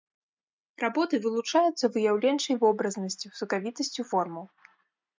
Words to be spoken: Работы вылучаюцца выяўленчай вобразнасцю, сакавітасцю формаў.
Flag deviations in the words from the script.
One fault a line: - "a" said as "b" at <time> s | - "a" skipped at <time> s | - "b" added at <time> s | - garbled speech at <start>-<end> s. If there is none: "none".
none